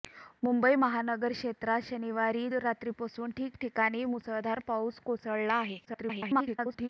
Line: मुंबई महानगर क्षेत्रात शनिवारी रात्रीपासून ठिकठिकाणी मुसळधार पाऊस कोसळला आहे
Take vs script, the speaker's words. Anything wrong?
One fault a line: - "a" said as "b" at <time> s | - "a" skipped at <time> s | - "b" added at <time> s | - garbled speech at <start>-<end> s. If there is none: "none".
- garbled speech at 5.9-6.9 s